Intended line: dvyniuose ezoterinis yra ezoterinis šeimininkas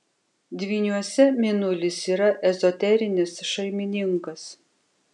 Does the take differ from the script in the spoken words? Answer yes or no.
yes